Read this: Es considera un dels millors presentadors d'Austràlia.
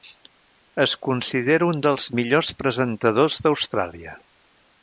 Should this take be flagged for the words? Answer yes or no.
no